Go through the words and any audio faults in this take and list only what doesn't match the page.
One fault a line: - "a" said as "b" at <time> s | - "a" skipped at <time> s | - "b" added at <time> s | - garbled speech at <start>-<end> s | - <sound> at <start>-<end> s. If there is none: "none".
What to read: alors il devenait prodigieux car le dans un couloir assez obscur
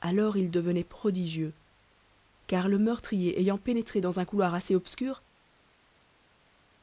- "meurtrier ayant pénétré" added at 2.8 s